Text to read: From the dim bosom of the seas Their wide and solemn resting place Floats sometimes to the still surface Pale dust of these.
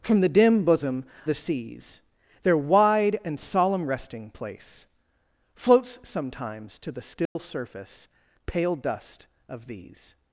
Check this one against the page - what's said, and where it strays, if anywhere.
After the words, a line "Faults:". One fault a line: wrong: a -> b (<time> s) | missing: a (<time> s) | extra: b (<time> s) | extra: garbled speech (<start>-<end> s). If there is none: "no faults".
From the dim bosom the seas Their wide and solemn resting place Floats sometimes to the still surface Pale dust of these.
Faults:
missing: of (1.1 s)